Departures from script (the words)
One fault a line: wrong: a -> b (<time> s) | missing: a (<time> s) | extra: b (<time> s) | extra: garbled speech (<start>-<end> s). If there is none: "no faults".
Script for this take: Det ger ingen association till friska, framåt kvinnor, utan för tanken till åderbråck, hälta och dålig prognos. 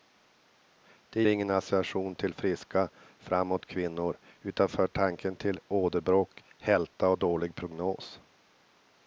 missing: ger (1.2 s)